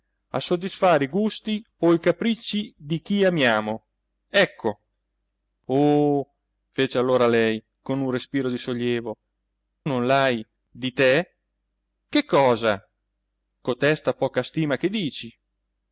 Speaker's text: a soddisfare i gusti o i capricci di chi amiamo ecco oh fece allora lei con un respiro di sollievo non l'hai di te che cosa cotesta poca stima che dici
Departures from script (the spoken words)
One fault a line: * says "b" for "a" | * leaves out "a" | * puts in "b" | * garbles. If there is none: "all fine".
all fine